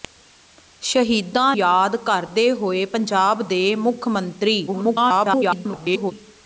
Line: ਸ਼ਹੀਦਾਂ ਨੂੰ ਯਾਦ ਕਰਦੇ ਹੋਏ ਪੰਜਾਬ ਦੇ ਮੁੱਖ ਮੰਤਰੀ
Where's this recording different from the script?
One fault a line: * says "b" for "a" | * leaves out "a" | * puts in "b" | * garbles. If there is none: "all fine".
* leaves out "ਨੂੰ"
* garbles